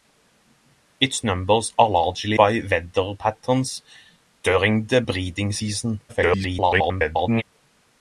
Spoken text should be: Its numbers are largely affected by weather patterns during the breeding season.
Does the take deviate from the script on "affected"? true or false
true